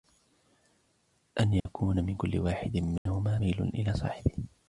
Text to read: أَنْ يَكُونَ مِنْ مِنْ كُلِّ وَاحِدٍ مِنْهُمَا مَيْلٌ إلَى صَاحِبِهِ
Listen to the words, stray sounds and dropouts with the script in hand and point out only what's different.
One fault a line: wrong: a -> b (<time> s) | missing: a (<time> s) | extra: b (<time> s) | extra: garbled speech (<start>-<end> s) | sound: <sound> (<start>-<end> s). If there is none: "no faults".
sound: dropout (1.6-1.7 s)
missing: مِنْ (2.1 s)
sound: dropout (3.0-3.1 s)